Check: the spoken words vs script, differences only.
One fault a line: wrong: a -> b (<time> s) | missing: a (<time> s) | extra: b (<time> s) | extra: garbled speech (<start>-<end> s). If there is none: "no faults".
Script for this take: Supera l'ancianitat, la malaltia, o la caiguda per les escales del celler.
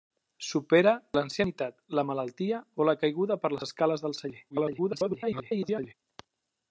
extra: garbled speech (4.5-5.9 s)